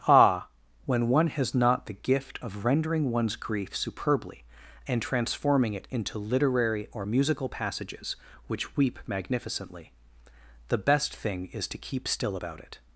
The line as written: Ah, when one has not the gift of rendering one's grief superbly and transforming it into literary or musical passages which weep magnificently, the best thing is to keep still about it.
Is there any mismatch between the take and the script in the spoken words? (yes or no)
no